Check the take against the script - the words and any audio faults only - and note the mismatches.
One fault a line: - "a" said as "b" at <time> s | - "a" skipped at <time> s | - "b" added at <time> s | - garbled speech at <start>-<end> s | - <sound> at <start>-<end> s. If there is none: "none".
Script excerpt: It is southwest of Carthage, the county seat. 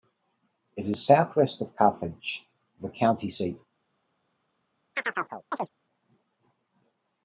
- chirp at 4.9-5.7 s